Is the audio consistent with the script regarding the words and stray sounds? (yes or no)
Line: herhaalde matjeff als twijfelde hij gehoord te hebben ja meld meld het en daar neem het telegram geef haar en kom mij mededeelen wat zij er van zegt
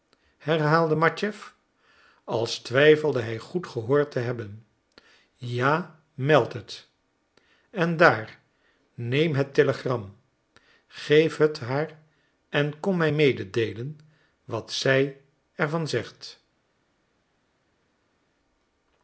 no